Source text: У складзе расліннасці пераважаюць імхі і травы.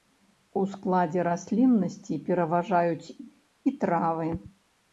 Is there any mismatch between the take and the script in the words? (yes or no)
yes